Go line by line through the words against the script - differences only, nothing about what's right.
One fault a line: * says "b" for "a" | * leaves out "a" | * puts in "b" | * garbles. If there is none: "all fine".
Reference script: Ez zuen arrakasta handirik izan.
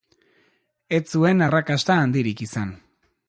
all fine